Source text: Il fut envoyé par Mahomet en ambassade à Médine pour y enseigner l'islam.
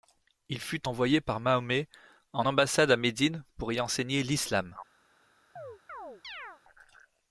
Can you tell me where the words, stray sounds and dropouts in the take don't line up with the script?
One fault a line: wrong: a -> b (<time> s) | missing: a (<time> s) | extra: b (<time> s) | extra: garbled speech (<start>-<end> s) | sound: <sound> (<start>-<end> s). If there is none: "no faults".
sound: chirp (5.6-6.6 s)